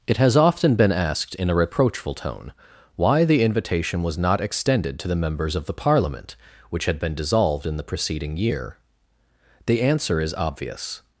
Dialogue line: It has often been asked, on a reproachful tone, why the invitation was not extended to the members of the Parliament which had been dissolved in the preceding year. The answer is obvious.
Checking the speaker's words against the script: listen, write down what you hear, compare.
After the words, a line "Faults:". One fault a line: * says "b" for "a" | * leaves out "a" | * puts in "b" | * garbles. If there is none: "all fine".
It has often been asked, in a reproachful tone, why the invitation was not extended to the members of the Parliament which had been dissolved in the preceding year. The answer is obvious.
Faults:
* says "in" for "on"